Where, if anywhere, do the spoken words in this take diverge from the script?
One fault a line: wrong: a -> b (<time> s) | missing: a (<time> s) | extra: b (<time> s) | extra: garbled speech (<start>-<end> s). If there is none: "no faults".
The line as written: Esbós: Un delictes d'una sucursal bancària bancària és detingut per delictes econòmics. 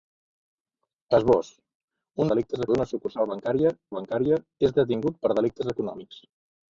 no faults